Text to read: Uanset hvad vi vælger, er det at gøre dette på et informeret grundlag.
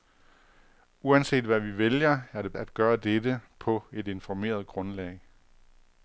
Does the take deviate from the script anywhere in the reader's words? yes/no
no